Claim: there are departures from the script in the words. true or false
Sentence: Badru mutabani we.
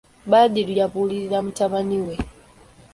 true